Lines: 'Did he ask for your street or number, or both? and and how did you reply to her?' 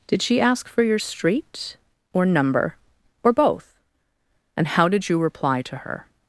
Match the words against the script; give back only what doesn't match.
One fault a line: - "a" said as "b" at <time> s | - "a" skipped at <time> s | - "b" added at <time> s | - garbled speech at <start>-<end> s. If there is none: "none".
- "he" said as "she" at 0.2 s
- "and" skipped at 4.7 s